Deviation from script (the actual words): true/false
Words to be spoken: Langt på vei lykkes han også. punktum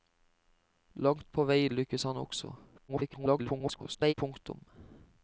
true